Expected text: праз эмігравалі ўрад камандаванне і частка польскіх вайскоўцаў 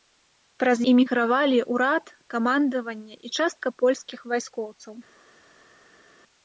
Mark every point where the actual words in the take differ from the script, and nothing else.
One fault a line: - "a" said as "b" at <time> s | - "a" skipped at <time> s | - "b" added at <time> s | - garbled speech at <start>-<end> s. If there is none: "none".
none